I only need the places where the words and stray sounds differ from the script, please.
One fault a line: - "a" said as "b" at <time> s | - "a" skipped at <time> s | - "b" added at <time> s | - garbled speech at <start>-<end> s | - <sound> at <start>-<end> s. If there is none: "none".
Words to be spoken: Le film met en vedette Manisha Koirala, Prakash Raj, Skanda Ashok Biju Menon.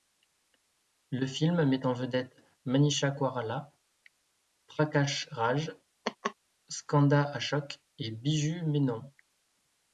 - laugh at 6.0-6.3 s
- "et" added at 8.0 s